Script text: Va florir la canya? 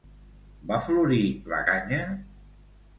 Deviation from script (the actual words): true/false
false